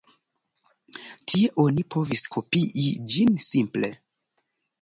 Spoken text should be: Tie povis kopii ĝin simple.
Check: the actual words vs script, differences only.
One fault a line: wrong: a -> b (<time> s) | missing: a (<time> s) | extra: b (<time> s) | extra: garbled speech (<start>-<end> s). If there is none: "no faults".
extra: oni (1.6 s)